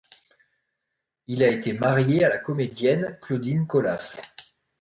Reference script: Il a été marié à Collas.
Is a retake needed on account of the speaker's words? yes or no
yes